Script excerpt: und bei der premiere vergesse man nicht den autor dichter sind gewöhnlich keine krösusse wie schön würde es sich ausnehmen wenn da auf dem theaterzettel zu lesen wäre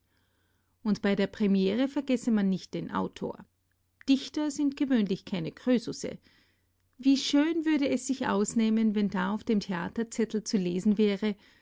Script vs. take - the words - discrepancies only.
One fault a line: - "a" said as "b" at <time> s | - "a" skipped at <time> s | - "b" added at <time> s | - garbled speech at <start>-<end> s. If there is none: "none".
none